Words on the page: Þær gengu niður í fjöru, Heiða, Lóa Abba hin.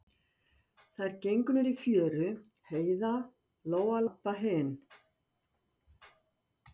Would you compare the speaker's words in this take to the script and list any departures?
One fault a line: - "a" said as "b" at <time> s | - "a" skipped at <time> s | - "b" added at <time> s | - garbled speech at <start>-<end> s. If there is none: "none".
none